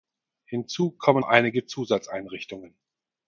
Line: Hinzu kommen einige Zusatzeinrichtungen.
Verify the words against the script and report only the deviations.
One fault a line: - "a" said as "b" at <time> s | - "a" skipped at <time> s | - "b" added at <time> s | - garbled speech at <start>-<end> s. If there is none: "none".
none